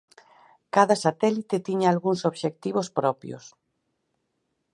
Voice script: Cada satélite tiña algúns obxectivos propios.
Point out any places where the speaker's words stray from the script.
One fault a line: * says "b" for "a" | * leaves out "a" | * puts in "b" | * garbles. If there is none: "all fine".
all fine